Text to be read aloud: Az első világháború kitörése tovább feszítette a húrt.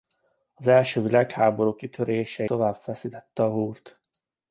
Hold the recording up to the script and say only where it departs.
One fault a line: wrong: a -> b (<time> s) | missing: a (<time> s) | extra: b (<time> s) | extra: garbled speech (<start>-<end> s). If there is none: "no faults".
no faults